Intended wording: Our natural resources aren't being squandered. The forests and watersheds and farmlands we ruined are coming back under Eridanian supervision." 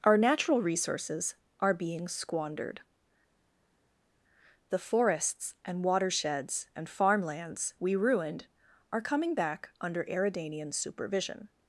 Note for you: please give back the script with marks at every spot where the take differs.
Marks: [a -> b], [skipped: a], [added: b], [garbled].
Our natural resources [aren't -> are] being squandered. The forests and watersheds and farmlands we ruined are coming back under Eridanian supervision."